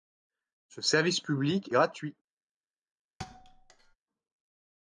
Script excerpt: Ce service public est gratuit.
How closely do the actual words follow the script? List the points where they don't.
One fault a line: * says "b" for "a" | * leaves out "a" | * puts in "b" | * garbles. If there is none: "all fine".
* leaves out "est"